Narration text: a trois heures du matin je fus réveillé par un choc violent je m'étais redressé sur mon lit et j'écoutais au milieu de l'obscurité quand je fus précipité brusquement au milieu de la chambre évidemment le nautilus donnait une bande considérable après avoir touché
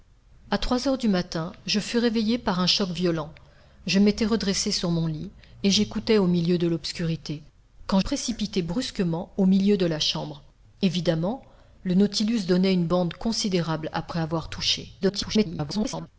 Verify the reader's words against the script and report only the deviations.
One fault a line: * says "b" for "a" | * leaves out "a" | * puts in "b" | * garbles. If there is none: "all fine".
* leaves out "je fus"
* garbles